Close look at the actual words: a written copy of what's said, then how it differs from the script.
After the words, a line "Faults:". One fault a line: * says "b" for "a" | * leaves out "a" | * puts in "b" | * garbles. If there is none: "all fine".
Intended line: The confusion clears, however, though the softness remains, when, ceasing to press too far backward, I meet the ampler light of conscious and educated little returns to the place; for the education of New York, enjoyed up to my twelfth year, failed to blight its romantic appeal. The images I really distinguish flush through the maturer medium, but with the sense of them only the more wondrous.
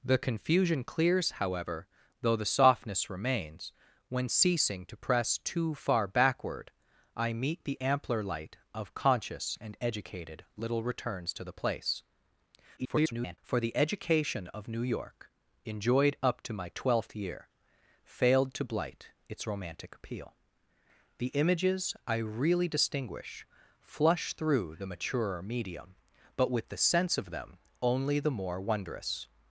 The confusion clears, however, though the softness remains, when, ceasing to press too far backward, I meet the ampler light of conscious and educated little returns to the place; [garbled] for the education of New York, enjoyed up to my twelfth year, failed to blight its romantic appeal. The images I really distinguish flush through the maturer medium, but with the sense of them only the more wondrous.
Faults:
* garbles